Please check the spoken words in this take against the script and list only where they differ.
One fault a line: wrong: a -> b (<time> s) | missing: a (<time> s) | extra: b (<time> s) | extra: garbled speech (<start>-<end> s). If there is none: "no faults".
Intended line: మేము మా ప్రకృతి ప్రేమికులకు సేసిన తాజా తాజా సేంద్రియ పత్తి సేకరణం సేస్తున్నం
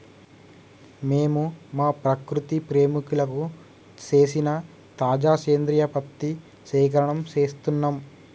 missing: తాజా (5.3 s)